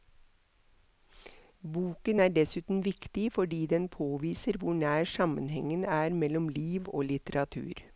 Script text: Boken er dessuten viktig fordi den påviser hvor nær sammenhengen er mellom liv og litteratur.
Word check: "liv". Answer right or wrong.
right